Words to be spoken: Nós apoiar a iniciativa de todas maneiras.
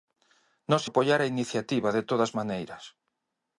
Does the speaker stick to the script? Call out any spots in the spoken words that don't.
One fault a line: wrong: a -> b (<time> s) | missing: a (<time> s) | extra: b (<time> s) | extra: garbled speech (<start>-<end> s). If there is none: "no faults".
no faults